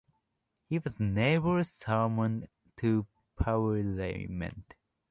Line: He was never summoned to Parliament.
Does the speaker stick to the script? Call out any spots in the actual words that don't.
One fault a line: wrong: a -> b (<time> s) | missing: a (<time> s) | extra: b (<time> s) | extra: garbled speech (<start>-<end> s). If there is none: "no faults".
no faults